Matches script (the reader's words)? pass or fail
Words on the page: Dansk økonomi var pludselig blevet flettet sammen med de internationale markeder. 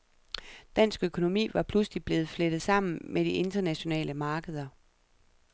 pass